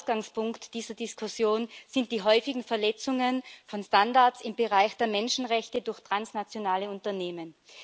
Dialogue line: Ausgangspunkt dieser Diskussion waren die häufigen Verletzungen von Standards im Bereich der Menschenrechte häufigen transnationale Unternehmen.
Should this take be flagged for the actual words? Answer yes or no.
yes